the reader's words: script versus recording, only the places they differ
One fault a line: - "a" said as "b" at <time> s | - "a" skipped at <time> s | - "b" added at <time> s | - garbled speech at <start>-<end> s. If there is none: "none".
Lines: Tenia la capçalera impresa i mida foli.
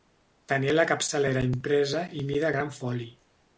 - "gran" added at 2.6 s